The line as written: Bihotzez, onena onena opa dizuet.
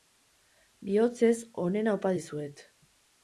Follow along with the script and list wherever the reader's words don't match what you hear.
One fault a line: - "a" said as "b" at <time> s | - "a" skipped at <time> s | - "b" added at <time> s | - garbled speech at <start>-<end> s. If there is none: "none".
- "onena" skipped at 1.9 s